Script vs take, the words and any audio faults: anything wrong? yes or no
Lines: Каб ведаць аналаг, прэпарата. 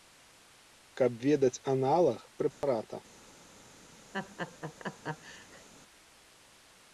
yes